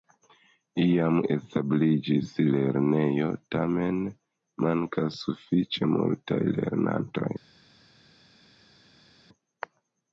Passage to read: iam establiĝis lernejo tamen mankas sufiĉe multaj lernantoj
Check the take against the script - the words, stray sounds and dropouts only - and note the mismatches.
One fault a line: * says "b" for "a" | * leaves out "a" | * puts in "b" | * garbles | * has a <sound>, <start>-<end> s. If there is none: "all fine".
all fine